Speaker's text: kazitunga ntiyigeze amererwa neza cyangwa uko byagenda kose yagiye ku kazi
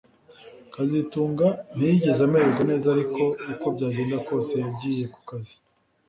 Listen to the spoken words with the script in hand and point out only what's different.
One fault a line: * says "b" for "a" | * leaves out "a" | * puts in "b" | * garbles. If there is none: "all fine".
* says "ariko" for "cyangwa"